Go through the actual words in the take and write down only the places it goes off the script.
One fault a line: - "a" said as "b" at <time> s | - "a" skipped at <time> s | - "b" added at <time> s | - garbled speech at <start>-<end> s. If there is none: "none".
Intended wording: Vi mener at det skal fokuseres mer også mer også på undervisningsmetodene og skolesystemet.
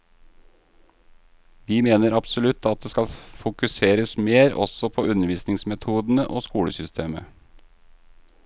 - "absolutt" added at 2.2 s
- "mer også" skipped at 4.9 s